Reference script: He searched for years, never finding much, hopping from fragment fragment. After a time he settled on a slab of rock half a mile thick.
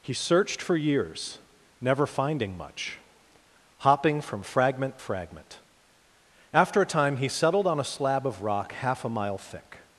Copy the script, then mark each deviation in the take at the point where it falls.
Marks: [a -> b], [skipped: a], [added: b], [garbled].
He searched for years, never finding much, hopping from fragment fragment. After a time he settled on a slab of rock half a mile thick.